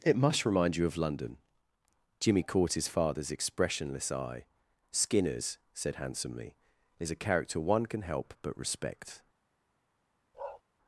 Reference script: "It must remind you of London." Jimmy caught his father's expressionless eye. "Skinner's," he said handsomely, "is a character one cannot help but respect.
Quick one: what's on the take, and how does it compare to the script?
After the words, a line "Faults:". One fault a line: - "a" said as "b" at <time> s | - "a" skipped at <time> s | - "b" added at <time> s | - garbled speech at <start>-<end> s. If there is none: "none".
"It must remind you of London." Jimmy caught his father's expressionless eye. "Skinner's," said handsomely, "is a character one can help but respect.
Faults:
- "he" skipped at 5.6 s
- "cannot" said as "can" at 7.8 s